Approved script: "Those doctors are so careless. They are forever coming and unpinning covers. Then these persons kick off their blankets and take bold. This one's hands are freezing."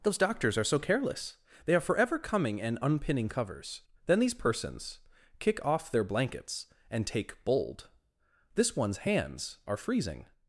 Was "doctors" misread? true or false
false